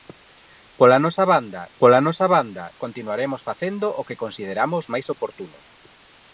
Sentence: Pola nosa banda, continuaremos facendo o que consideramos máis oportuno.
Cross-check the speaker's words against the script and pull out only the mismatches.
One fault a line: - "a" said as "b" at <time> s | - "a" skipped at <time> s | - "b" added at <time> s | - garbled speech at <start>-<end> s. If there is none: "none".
- "pola nosa banda" added at 1.8 s